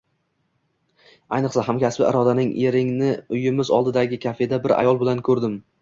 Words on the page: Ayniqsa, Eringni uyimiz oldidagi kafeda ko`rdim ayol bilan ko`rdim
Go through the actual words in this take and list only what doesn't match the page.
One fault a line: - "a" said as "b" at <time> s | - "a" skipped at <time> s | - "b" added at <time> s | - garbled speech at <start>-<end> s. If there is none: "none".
- "hamkasbi Irodaning" added at 1.7 s
- "ko`rdim" said as "bir" at 4.7 s